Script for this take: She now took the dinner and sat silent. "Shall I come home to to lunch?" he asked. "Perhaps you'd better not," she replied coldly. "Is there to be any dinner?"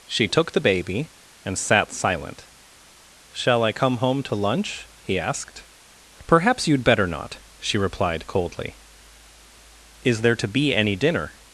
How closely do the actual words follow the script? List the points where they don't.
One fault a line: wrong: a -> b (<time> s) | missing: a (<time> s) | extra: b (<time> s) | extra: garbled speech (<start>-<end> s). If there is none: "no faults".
missing: now (0.3 s)
wrong: dinner -> baby (0.6 s)
missing: to (4.4 s)